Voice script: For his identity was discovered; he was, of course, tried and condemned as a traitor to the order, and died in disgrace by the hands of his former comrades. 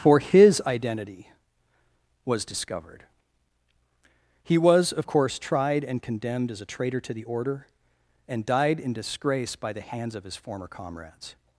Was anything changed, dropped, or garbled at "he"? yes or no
no